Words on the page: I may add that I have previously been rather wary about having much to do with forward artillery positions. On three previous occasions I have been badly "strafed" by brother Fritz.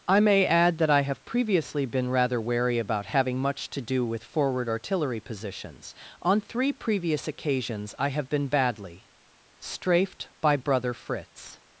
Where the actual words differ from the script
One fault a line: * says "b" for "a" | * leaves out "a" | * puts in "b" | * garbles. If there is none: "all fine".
all fine